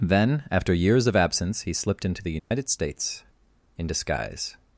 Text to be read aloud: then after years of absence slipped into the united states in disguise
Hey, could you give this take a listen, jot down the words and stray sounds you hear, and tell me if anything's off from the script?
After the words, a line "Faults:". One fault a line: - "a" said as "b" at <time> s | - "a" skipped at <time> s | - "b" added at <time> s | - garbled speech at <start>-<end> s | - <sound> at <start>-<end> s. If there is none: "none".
then after years of absence he slipped into the united states in disguise
Faults:
- "he" added at 1.6 s
- dropout at 2.4-2.5 s